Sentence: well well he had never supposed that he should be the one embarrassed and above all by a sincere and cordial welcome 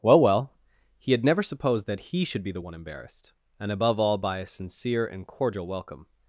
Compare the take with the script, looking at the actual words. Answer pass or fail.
pass